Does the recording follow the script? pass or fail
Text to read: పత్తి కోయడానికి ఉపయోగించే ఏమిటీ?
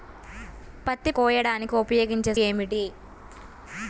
pass